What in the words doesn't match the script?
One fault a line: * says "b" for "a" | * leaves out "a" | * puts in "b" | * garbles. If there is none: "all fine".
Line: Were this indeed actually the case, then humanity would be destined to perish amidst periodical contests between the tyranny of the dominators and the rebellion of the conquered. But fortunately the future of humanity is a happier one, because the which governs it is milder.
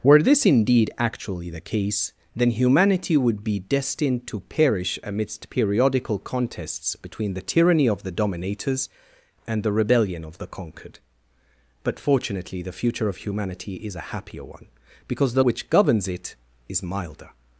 all fine